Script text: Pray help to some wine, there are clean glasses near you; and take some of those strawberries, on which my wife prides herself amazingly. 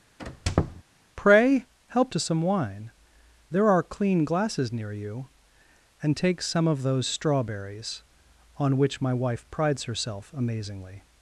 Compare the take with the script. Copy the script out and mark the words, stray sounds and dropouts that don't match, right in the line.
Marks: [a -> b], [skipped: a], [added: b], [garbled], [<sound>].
[squeak] Pray help to some wine, there are clean glasses near you; and take some of those strawberries, on which my wife prides herself amazingly.